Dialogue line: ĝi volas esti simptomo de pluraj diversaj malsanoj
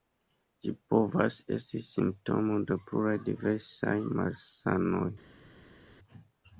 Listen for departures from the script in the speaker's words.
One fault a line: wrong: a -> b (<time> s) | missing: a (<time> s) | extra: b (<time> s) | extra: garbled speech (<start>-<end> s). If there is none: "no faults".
wrong: volas -> povas (0.9 s)